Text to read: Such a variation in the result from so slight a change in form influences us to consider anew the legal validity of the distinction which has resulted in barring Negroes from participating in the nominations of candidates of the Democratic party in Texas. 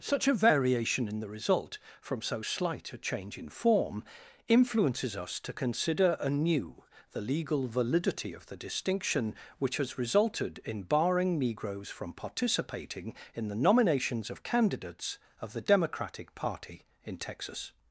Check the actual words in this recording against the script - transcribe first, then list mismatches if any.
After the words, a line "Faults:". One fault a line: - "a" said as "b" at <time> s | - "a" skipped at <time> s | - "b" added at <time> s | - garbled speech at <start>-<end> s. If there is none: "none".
Such a variation in the result from so slight a change in form influences us to consider anew the legal validity of the distinction which has resulted in barring Negroes from participating in the nominations of candidates of the Democratic party in Texas.
Faults:
none